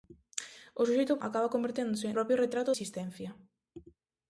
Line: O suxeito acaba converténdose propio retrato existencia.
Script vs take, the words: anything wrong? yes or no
no